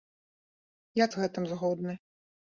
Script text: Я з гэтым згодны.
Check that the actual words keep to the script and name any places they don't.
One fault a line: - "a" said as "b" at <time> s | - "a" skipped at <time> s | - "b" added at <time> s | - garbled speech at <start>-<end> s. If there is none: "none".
none